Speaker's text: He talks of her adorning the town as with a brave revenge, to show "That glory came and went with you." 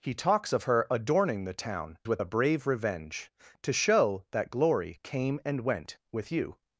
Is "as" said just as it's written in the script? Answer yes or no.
no